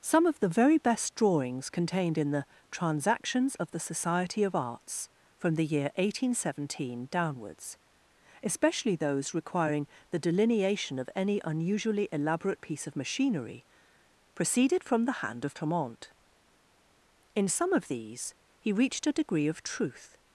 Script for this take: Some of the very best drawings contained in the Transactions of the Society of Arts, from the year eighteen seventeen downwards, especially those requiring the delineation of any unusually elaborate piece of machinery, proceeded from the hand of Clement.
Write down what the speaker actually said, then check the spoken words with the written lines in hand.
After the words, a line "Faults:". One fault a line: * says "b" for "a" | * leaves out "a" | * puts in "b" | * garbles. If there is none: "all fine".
Some of the very best drawings contained in the Transactions of the Society of Arts, from the year eighteen seventeen downwards, especially those requiring the delineation of any unusually elaborate piece of machinery, proceeded from the hand of Clement. In some of these, he reached a degree of truth
Faults:
* puts in "In some of these he reached a degree of truth"